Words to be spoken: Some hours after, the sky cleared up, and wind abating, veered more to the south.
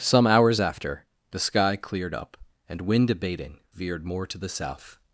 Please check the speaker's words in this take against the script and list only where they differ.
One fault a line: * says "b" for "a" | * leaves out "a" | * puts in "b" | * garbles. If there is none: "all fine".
all fine